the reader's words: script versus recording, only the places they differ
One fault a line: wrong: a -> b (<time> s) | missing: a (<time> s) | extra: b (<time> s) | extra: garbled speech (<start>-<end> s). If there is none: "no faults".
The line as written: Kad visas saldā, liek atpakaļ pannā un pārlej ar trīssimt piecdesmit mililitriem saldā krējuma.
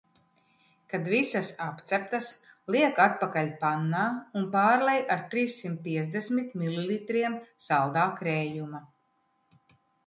wrong: saldā -> apceptas (1.6 s)